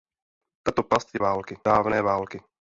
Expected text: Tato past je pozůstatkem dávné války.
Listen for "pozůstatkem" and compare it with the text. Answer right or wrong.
wrong